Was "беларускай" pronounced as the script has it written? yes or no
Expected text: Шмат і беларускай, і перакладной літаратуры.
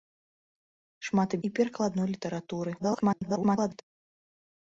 no